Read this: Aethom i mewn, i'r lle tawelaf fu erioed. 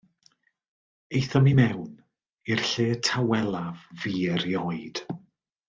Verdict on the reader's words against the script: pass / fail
pass